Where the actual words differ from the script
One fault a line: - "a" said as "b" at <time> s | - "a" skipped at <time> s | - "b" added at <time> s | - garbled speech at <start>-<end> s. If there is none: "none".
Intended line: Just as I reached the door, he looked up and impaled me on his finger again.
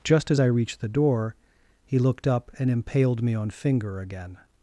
- "his" skipped at 3.5 s